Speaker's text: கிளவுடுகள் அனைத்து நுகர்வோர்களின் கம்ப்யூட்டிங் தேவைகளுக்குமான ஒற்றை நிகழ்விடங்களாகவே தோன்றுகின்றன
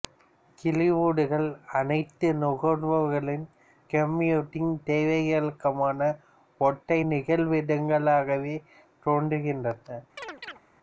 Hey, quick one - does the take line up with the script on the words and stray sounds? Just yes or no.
no